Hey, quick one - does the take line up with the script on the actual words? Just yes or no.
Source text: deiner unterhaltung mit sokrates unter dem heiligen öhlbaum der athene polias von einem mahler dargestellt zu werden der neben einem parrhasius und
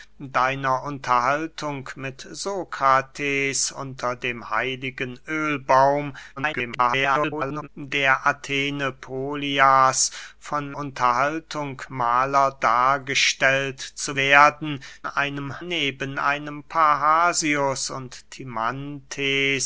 no